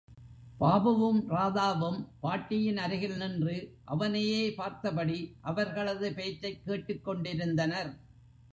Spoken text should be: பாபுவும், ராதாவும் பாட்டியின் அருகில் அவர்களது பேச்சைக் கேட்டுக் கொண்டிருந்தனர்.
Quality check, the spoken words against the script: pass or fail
fail